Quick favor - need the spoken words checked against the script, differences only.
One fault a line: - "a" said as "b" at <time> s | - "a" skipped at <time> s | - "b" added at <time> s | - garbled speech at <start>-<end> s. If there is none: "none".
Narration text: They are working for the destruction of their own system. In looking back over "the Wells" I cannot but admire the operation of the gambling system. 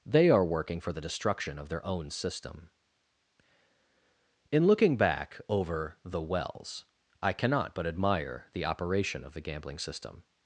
none